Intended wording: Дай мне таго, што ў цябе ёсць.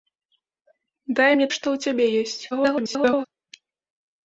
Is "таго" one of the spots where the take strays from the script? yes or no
yes